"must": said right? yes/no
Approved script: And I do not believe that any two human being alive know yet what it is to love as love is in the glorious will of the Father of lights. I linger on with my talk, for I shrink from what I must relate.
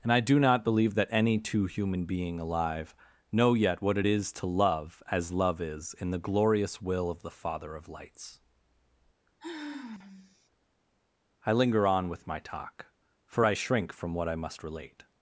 yes